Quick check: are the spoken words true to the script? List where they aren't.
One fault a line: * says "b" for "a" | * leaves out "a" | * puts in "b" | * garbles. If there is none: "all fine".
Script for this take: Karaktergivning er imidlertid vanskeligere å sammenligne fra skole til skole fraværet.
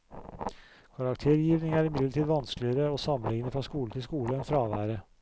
* puts in "enn"